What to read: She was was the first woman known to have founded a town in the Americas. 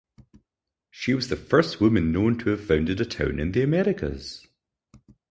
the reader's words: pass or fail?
fail